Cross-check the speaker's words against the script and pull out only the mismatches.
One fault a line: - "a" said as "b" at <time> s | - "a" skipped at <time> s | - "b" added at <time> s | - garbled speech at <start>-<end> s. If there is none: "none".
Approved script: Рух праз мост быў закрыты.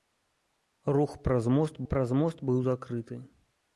- "праз мост" added at 1.9 s